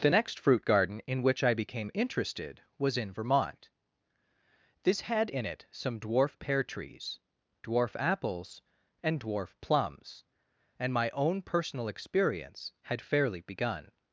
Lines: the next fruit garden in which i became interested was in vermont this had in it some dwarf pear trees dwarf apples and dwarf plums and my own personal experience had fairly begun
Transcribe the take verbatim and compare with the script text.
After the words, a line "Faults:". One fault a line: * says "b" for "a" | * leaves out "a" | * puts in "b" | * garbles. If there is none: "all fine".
the next fruit garden in which i became interested was in vermont this had in it some dwarf pear trees dwarf apples and dwarf plums and my own personal experience had fairly begun
Faults:
all fine